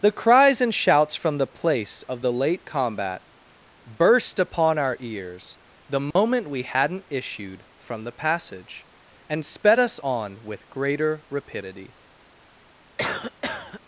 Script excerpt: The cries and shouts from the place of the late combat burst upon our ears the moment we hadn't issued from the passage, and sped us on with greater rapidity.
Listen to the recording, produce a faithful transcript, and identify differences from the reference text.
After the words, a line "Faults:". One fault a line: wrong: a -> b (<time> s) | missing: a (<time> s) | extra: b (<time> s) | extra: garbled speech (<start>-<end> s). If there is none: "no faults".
The cries and shouts from the place of the late combat burst upon our ears the moment we hadn't issued from the passage, and sped us on with greater rapidity.
Faults:
no faults